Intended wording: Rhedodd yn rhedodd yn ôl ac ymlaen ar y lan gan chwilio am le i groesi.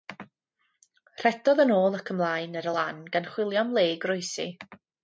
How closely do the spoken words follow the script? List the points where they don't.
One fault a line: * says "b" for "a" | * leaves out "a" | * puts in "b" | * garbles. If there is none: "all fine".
* leaves out "rhedodd yn"